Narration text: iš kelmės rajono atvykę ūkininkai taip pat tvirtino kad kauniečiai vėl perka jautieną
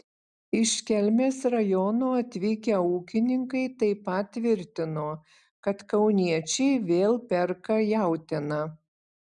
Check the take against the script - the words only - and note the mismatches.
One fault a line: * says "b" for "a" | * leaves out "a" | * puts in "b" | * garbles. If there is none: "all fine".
all fine